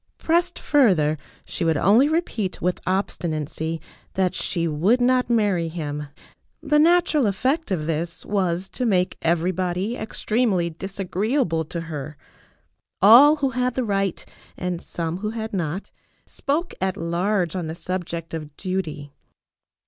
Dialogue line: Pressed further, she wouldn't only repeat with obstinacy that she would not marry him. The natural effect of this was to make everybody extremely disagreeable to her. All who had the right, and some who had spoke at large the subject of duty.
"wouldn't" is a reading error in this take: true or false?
true